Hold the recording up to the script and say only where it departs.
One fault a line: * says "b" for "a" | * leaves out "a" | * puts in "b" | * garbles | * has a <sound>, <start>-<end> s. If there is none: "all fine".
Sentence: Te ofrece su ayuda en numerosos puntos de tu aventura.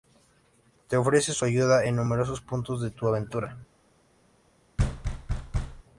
* has a thud, 4.8-5.8 s